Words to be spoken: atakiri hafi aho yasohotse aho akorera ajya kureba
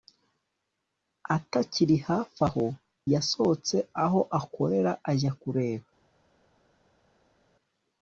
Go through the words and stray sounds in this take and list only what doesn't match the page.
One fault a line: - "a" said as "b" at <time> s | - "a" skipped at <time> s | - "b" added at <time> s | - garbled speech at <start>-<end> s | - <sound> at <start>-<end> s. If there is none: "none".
none